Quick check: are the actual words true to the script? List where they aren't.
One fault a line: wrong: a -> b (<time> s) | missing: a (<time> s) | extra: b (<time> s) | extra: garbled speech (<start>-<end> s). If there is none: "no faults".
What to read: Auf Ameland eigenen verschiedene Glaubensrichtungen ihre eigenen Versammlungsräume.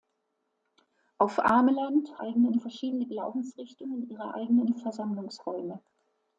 no faults